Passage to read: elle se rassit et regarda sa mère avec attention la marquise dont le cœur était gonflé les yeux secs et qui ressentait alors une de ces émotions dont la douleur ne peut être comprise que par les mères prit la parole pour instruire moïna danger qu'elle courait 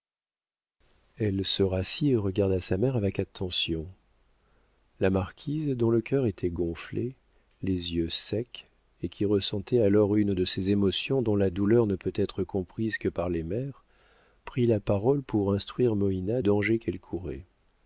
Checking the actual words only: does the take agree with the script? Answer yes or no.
yes